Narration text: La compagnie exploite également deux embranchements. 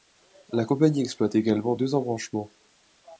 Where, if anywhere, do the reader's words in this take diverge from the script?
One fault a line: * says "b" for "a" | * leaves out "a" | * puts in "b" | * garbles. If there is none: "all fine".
all fine